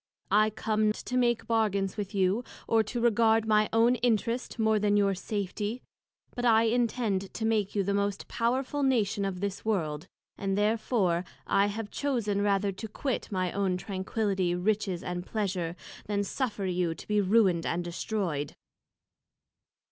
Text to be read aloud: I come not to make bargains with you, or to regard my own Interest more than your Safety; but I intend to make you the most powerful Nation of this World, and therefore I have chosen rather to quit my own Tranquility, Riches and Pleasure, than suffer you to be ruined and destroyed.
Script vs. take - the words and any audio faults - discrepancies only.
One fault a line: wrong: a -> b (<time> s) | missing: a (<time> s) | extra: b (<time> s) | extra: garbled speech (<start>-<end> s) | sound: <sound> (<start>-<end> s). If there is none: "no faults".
missing: not (0.9 s)